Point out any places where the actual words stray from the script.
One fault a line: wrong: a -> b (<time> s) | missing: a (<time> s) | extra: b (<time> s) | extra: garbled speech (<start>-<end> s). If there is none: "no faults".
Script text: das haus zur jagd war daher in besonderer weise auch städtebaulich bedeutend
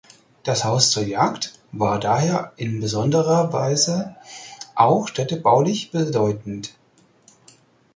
no faults